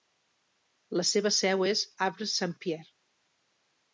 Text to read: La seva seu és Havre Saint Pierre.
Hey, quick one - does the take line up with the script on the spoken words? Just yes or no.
yes